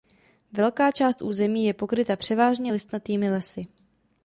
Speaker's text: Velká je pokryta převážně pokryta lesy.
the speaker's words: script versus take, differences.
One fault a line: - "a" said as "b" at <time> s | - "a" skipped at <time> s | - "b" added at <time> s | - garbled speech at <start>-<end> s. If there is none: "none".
- "část území" added at 0.9 s
- "pokryta" said as "listnatými" at 2.7 s